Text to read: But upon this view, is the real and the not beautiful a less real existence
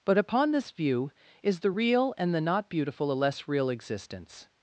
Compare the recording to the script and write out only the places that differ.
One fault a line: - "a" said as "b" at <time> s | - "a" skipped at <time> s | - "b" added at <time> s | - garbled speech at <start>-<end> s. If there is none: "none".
none